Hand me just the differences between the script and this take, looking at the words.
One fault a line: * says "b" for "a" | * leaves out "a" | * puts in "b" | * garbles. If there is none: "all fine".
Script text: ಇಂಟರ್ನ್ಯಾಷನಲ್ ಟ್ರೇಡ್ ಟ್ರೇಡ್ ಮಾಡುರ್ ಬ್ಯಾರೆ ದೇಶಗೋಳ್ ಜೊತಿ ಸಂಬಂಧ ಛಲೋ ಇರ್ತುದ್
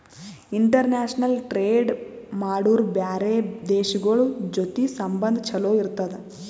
* leaves out "ಟ್ರೇಡ್"